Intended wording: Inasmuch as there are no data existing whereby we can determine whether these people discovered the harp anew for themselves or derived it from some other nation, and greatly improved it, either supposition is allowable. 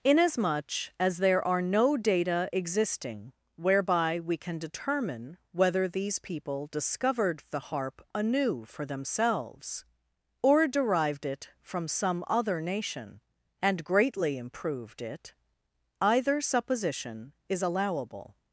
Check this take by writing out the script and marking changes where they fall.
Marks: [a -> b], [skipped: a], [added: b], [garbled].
Inasmuch as there are no data existing whereby we can determine whether these people discovered the harp anew for themselves or derived it from some other nation, and greatly improved it, either supposition is allowable.